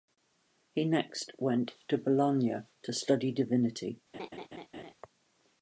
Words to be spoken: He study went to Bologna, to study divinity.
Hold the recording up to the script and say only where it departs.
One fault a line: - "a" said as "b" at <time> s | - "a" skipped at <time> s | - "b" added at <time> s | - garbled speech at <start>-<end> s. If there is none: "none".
- "study" said as "next" at 0.8 s